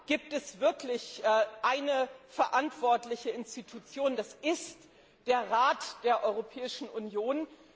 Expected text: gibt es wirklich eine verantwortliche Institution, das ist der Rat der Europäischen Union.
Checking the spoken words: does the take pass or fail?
pass